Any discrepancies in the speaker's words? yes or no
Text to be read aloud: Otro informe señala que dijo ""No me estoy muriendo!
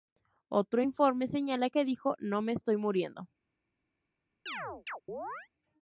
no